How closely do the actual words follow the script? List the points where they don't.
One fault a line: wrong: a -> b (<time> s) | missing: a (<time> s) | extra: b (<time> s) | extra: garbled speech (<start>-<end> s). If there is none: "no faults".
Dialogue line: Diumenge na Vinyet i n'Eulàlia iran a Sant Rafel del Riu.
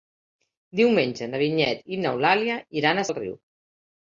missing: Sant Rafel (3.0 s)